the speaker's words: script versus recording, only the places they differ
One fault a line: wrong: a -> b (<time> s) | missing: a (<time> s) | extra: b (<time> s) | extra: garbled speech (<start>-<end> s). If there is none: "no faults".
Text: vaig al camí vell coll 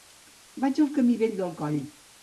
extra: del (1.4 s)